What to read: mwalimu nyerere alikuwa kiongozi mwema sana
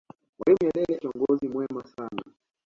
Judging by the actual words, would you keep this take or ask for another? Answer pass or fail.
fail